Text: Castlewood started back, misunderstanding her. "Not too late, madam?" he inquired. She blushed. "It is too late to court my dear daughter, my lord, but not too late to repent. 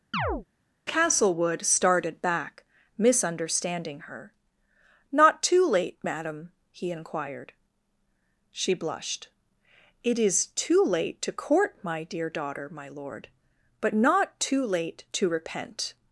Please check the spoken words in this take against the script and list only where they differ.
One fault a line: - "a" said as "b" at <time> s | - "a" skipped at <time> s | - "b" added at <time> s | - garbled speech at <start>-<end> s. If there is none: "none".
none